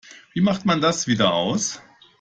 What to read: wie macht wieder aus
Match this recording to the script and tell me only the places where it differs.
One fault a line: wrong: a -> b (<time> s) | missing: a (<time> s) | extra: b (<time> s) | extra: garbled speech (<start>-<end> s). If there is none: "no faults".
extra: man das (0.6 s)